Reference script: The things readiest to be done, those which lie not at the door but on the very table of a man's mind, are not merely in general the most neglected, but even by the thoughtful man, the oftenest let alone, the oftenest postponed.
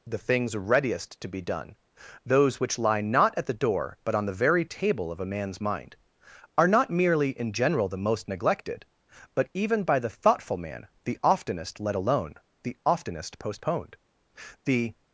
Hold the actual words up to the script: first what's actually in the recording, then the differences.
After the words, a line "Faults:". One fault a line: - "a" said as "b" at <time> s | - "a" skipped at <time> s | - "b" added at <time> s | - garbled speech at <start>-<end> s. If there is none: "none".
The things readiest to be done, those which lie not at the door but on the very table of a man's mind, are not merely in general the most neglected, but even by the thoughtful man, the oftenest let alone, the oftenest postponed. The
Faults:
- "The" added at 14.6 s